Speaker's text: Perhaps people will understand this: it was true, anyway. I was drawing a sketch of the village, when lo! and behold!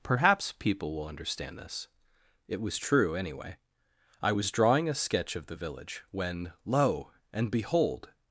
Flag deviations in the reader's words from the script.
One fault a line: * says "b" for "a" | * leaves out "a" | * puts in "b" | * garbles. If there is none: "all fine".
all fine